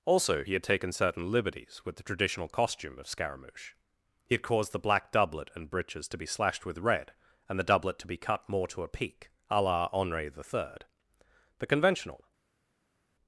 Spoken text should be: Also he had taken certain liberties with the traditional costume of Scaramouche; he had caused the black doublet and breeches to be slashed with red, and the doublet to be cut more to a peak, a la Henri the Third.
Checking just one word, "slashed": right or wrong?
right